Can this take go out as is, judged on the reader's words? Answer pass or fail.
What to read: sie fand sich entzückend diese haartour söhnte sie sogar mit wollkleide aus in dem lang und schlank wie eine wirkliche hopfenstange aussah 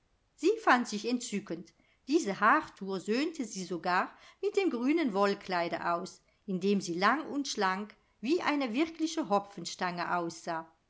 fail